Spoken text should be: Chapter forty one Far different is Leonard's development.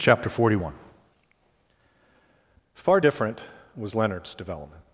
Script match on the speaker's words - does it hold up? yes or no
no